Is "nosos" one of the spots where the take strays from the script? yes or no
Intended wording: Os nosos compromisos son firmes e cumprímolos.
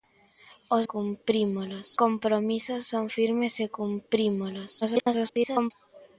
yes